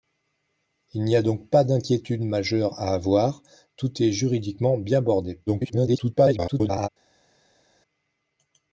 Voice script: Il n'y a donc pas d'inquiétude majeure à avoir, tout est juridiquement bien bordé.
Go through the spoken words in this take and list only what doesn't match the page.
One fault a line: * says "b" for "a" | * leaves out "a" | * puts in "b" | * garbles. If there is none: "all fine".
* garbles